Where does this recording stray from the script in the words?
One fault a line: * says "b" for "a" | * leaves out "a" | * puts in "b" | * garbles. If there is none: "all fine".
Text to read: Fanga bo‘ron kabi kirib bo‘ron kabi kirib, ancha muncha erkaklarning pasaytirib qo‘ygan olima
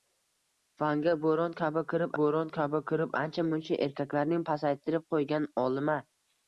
all fine